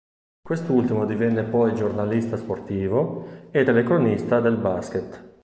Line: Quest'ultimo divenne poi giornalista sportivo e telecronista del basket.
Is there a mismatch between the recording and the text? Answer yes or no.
no